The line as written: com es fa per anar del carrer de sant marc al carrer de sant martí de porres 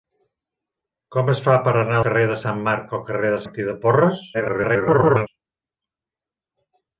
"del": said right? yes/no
no